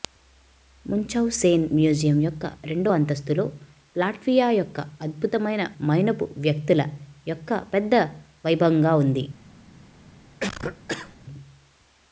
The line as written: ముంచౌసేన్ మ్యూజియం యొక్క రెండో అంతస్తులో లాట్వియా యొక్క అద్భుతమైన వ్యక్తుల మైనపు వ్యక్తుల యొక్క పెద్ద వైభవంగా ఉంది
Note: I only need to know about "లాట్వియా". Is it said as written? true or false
true